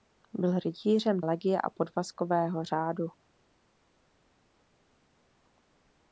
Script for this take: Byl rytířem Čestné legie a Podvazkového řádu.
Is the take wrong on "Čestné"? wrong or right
wrong